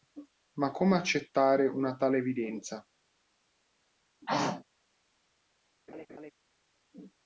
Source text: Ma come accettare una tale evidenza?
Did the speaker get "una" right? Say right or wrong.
right